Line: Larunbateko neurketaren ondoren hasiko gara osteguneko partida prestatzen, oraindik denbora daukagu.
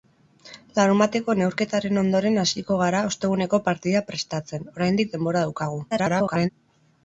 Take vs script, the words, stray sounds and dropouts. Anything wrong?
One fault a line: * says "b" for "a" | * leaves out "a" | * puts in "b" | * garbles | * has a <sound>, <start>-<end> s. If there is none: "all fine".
* garbles